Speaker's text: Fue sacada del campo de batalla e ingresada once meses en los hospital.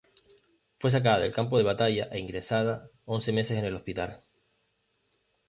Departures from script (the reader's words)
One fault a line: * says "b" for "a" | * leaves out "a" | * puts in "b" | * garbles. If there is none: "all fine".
* says "el" for "los"